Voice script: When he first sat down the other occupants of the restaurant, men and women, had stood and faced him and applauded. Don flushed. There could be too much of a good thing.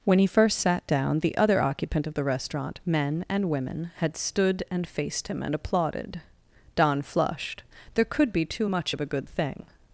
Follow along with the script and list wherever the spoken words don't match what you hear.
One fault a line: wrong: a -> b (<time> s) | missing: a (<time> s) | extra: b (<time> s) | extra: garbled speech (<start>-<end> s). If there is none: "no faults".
wrong: occupants -> occupant (1.6 s)